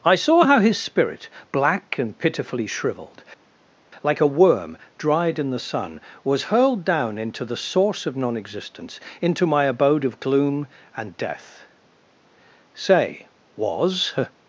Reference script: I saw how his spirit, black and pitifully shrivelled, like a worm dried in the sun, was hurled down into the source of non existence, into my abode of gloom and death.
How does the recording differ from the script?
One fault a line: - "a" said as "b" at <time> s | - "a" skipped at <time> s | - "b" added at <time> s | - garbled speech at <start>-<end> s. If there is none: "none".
- "Say was" added at 12.7 s